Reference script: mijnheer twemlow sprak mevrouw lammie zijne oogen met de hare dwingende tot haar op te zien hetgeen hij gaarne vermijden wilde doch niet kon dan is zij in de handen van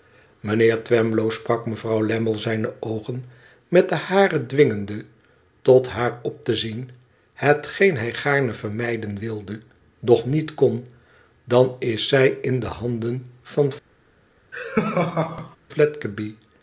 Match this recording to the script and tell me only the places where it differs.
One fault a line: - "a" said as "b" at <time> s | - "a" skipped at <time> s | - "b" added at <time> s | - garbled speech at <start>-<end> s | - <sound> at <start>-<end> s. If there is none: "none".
- laugh at 14.5-15.6 s